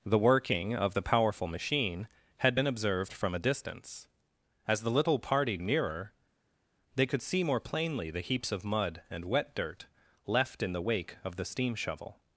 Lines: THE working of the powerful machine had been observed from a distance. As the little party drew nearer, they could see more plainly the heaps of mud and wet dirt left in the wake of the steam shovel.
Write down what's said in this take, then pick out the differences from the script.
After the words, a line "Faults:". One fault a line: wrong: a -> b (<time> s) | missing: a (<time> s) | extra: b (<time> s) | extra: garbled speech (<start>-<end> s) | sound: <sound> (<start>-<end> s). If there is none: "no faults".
THE working of the powerful machine had been observed from a distance. As the little party nearer, they could see more plainly the heaps of mud and wet dirt left in the wake of the steam shovel.
Faults:
missing: drew (5.6 s)